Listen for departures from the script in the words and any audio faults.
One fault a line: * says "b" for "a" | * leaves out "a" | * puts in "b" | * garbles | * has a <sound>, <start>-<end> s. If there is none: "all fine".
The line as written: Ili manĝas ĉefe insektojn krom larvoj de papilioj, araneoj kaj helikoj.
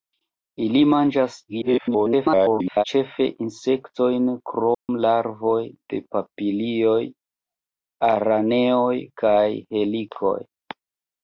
* garbles
* has a dropout, 4.7-4.9 s